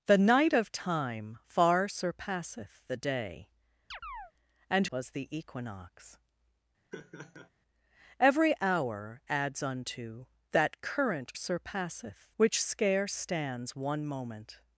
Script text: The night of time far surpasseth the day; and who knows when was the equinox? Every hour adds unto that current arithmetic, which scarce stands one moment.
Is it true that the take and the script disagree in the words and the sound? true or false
true